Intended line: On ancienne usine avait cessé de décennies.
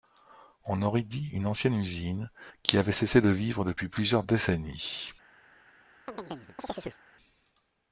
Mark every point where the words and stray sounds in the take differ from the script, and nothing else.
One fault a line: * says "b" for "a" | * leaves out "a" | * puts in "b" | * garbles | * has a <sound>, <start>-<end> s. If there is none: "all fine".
* puts in "aurait dit une"
* puts in "qui"
* puts in "vivre depuis plusieurs"
* has a chirp, 6.1-7.0 s